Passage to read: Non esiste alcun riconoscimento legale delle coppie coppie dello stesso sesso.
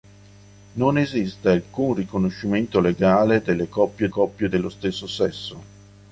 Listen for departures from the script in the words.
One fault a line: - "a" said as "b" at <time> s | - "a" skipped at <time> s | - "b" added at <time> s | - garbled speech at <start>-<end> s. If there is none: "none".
none